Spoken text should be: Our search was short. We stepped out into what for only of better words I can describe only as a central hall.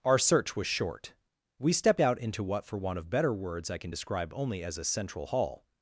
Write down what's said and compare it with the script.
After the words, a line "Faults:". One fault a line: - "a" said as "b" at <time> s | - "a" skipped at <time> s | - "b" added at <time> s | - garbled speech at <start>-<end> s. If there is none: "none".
Our search was short. We stepped out into what for want of better words I can describe only as a central hall.
Faults:
- "only" said as "want" at 2.8 s